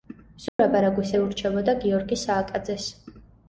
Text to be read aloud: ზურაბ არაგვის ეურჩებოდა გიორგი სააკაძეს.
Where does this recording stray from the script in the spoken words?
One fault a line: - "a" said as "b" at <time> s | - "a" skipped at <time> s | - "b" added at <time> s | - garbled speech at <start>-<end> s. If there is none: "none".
none